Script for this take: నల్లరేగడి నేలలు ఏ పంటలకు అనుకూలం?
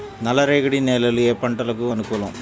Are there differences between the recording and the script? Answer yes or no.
no